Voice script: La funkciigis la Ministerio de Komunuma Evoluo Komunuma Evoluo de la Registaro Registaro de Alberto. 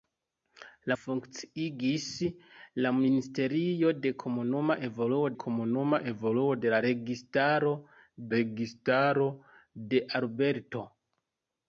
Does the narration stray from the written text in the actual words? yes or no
no